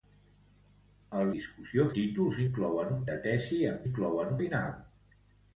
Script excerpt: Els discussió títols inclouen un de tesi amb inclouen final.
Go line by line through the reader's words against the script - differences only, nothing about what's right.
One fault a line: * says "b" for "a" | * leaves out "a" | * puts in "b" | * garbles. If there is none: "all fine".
all fine